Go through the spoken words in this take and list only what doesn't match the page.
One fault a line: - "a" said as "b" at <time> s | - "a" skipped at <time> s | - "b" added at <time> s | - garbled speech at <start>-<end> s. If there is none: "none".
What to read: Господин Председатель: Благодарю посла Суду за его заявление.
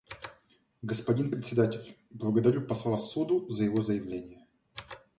none